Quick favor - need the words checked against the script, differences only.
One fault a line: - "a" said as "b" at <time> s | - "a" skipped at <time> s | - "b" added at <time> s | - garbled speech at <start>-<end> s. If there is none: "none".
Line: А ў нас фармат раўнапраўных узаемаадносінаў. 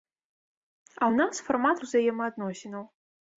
- "раўнапраўных" skipped at 1.8 s